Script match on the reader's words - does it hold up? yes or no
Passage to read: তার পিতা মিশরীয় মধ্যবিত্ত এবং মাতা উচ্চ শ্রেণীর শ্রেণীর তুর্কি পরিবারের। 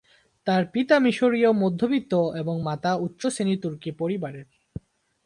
no